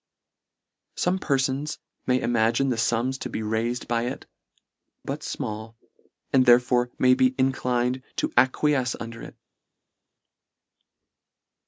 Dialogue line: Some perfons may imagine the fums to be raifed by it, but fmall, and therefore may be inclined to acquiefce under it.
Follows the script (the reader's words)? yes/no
yes